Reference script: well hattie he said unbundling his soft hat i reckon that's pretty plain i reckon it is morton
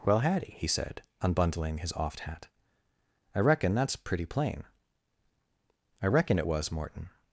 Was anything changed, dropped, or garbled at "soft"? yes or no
yes